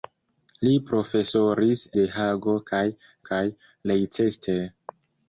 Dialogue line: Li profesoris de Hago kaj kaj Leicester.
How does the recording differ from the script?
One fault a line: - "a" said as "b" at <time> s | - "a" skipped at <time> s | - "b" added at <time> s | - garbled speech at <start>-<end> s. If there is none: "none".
none